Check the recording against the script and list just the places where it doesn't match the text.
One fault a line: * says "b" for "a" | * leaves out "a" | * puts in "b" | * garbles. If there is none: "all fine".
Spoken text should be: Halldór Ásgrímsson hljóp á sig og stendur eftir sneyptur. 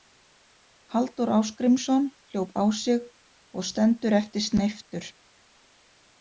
all fine